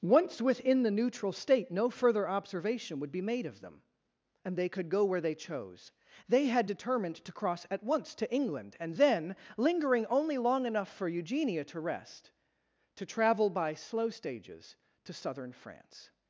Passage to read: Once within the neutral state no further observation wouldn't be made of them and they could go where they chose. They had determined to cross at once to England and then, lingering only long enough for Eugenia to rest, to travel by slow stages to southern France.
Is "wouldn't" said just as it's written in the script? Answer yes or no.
no